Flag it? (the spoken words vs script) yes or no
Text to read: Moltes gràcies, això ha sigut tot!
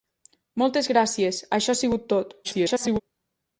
yes